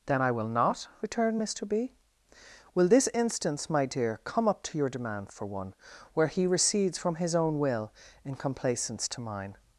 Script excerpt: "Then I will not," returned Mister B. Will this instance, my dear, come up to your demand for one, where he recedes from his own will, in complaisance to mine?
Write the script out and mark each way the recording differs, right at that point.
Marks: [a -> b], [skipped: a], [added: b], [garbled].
"Then I will not," returned Mister B. Will this instance, my dear, come up to your demand for one, where he recedes from his own will, in complaisance to mine?